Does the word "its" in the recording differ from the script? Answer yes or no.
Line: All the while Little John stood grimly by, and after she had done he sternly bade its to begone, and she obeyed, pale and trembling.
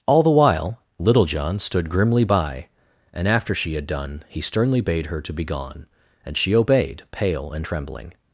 yes